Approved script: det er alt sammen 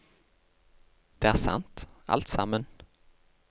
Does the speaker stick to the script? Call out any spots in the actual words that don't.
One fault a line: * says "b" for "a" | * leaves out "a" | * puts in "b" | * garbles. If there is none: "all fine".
* puts in "sant"